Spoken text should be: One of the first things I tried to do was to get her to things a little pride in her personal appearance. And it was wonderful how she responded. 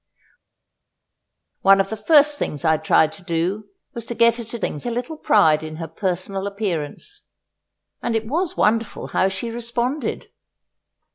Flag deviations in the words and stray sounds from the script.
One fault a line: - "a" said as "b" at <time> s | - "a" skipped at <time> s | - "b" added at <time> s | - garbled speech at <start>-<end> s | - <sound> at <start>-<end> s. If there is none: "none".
none